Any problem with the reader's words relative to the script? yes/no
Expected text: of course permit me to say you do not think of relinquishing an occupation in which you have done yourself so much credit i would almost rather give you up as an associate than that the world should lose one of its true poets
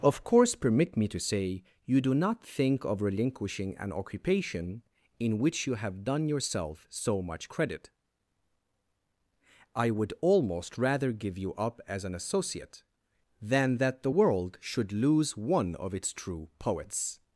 no